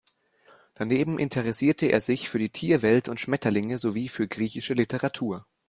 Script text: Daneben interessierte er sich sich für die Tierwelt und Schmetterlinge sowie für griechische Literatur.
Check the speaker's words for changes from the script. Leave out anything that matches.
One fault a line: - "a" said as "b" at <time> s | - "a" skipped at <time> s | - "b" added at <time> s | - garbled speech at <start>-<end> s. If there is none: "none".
- "sich" skipped at 2.3 s